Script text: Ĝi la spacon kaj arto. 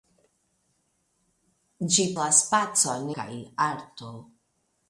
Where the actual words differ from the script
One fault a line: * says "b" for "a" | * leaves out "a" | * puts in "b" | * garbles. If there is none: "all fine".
all fine